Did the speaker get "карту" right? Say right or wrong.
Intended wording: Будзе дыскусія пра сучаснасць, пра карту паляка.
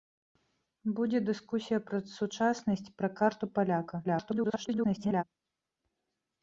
right